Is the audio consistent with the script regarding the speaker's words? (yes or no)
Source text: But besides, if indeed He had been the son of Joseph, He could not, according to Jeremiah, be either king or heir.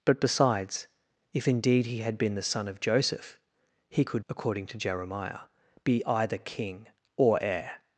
no